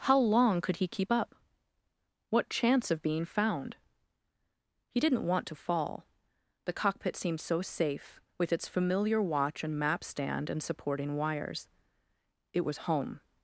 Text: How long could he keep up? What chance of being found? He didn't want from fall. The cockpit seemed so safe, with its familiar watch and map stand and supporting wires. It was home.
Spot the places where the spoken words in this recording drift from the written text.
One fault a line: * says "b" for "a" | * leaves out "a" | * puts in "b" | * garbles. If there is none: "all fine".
* says "to" for "from"